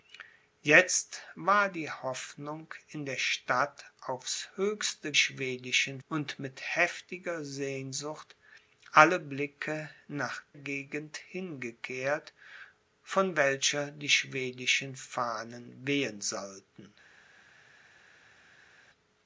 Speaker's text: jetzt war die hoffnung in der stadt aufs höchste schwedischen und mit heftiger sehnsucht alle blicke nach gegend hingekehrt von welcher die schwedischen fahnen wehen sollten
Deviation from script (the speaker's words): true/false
false